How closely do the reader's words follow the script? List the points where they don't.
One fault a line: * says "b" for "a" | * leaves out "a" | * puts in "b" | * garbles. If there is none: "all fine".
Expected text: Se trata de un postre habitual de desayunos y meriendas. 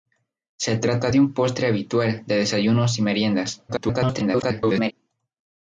* garbles